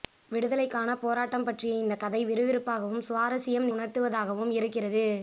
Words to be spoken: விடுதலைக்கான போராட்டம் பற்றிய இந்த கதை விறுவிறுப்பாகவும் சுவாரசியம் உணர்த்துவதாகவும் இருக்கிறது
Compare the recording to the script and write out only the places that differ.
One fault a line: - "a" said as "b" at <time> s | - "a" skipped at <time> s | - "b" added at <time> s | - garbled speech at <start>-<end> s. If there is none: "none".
none